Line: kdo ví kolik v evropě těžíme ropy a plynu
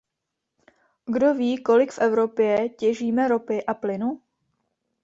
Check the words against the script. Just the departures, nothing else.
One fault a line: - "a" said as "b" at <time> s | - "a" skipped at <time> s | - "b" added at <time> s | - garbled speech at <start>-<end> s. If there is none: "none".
none